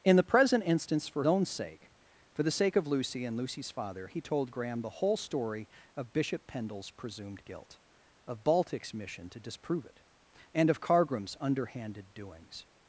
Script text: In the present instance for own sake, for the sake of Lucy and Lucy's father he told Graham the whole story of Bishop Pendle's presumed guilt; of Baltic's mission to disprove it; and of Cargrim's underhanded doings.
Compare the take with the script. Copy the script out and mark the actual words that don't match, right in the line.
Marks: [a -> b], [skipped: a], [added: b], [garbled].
In the present instance for own sake, for the sake of Lucy and Lucy's father he told Graham the whole story of Bishop Pendle's presumed guilt; of Baltic's mission to disprove it; and of Cargrim's underhanded doings.